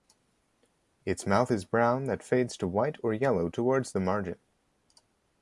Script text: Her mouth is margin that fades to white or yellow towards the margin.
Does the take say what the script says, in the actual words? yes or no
no